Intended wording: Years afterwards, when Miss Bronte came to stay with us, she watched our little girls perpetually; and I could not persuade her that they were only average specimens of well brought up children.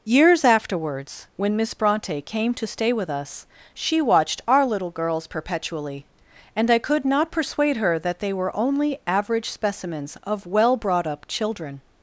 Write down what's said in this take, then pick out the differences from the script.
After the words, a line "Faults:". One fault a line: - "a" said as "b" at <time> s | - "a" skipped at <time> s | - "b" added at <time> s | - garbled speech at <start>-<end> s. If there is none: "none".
Years afterwards, when Miss Bronte came to stay with us, she watched our little girls perpetually; and I could not persuade her that they were only average specimens of well brought up children.
Faults:
none